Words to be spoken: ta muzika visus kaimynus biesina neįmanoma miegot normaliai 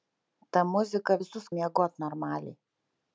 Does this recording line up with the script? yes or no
no